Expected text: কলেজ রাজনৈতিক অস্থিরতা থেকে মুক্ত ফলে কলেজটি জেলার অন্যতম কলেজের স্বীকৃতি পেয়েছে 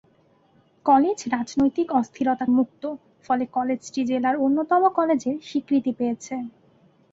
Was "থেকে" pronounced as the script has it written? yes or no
no